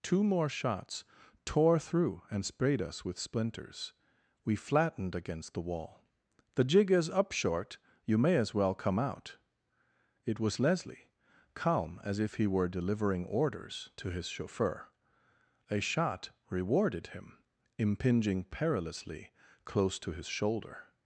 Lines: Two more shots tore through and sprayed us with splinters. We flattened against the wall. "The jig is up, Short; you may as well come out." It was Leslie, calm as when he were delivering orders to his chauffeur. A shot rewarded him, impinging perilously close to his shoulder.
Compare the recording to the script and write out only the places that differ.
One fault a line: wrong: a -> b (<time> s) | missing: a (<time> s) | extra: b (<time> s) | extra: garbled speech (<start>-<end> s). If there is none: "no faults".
wrong: when -> if (12.2 s)